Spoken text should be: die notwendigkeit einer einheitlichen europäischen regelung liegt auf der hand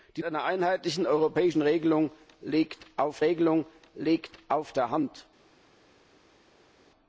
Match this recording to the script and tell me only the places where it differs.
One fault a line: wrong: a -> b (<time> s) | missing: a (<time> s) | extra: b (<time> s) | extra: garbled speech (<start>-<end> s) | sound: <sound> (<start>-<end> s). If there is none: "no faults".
missing: notwendigkeit (0.2 s)
extra: regelung liegt auf (3.2 s)